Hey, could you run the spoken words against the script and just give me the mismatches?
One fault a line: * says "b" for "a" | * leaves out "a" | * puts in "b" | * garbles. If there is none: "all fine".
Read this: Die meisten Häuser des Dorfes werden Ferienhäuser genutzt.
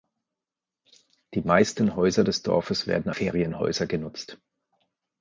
all fine